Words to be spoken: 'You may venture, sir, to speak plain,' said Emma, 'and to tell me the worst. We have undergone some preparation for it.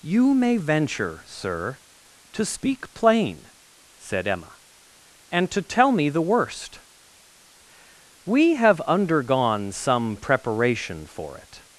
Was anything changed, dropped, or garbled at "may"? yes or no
no